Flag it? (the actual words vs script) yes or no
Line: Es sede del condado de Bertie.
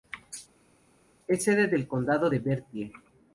no